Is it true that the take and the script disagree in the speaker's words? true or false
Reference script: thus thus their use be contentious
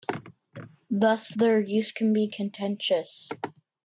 true